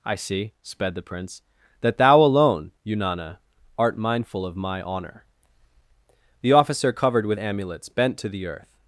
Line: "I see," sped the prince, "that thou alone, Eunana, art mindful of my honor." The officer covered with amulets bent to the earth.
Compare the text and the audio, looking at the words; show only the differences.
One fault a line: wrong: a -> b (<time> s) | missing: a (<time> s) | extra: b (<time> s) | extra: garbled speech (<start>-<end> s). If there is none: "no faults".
no faults